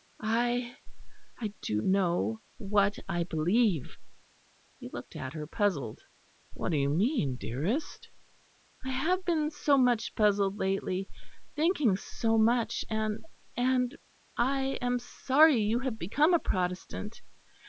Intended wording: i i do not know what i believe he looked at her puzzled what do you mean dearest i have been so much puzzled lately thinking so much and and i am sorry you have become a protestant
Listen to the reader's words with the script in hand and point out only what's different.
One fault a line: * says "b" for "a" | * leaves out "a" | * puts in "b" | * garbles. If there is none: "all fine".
* leaves out "not"